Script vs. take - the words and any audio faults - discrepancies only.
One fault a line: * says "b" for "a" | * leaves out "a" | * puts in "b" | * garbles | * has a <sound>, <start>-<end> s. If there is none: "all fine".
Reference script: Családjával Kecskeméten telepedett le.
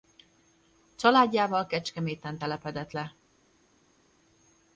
all fine